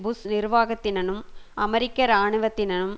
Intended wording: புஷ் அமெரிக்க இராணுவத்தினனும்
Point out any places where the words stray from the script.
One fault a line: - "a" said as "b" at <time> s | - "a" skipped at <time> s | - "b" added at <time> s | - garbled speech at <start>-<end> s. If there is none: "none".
- "நிர்வாகத்தினனும்" added at 0.3 s